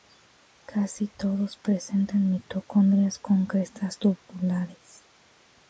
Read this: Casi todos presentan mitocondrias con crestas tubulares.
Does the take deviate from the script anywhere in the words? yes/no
no